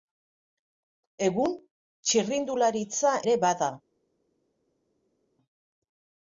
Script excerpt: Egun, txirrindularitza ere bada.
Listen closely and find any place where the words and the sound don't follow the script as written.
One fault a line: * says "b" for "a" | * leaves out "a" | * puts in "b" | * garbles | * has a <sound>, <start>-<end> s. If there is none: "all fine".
all fine